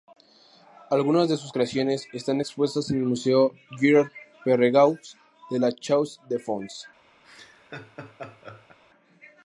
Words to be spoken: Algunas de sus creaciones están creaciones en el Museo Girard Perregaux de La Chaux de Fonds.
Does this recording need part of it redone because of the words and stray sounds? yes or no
yes